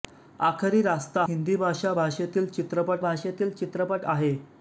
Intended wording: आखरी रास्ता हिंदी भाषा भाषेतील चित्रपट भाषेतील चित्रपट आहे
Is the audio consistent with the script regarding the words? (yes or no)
yes